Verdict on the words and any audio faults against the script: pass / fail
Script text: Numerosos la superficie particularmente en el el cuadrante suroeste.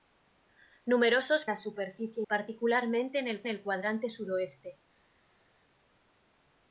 pass